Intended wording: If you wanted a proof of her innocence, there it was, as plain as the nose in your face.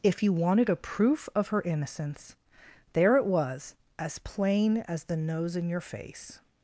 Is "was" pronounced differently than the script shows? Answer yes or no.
no